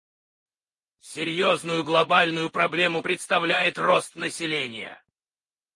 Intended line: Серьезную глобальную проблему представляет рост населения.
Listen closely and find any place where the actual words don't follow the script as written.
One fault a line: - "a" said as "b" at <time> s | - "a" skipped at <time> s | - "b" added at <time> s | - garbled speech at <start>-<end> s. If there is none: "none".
none